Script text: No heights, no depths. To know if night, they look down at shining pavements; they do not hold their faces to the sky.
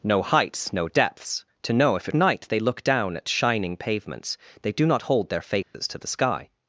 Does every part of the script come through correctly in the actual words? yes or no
yes